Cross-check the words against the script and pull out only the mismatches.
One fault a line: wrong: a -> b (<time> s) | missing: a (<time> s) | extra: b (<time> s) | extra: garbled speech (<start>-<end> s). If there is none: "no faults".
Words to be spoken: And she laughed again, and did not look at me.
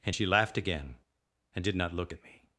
no faults